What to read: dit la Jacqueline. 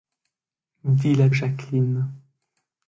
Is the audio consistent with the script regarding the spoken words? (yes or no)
yes